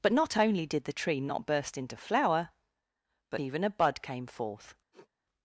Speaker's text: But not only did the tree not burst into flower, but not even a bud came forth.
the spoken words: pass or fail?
fail